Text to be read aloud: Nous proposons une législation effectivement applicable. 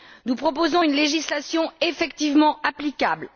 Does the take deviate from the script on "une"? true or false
false